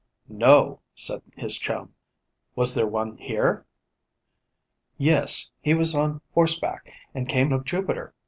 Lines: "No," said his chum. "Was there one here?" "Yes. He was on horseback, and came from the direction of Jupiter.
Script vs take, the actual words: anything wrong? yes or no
yes